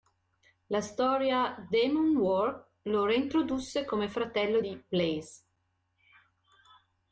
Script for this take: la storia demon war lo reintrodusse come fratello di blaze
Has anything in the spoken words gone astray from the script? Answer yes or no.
no